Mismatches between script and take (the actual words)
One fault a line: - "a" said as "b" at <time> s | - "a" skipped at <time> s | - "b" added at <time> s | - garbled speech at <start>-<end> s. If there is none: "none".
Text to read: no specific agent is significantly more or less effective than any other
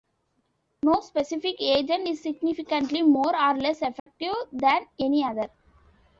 none